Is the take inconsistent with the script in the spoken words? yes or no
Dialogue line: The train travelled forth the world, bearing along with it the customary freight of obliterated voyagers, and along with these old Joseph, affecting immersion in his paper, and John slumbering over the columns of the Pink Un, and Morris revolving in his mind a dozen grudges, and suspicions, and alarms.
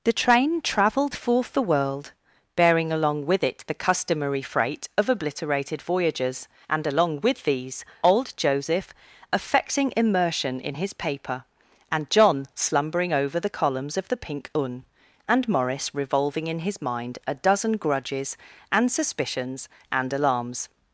no